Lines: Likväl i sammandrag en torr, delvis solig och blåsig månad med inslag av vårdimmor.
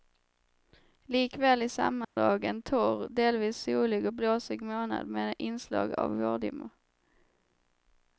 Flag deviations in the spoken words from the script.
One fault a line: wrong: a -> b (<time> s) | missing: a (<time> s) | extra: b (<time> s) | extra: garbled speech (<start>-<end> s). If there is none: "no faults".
no faults